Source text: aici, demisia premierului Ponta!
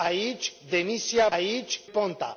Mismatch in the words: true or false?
true